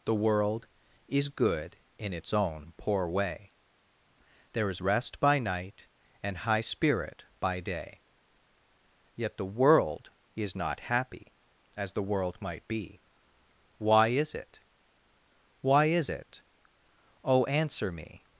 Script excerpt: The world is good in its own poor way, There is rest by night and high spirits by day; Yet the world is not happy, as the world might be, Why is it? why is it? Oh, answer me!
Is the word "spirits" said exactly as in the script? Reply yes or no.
no